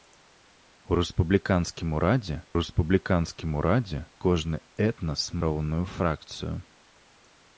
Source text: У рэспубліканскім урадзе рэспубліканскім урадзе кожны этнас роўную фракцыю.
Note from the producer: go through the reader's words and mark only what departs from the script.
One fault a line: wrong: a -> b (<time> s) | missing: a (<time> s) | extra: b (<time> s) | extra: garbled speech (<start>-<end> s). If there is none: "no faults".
no faults